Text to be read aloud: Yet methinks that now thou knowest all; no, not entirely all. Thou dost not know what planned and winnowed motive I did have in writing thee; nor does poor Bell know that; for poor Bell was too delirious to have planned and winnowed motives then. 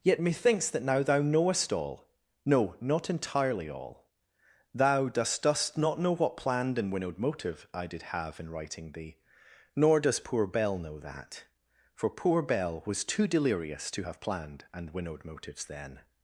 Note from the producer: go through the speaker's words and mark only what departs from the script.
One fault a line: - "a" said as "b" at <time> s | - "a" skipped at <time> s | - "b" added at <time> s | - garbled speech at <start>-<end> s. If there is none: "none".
- "dost" added at 5.4 s